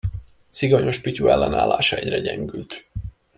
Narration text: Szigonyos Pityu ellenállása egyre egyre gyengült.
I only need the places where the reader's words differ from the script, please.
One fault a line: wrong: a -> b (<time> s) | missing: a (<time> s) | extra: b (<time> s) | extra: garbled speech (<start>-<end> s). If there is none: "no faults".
missing: egyre (2.2 s)